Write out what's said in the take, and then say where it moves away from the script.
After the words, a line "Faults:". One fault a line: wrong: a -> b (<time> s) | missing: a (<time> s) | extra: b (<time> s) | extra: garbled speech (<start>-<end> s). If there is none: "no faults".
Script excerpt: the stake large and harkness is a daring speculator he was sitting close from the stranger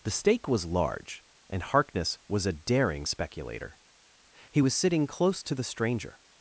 the stake was large and harkness was a daring speculator he was sitting close to the stranger
Faults:
extra: was (0.5 s)
wrong: is -> was (2.3 s)
wrong: from -> to (5.4 s)